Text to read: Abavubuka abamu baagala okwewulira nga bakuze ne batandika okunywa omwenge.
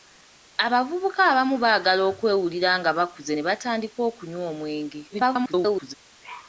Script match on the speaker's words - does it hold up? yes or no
no